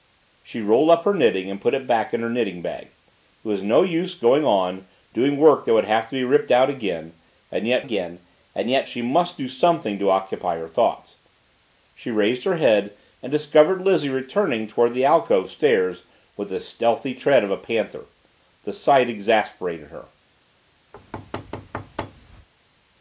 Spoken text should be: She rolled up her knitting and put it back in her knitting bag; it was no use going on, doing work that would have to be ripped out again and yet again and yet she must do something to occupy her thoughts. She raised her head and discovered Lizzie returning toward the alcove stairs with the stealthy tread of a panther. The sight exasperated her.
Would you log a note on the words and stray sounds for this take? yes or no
yes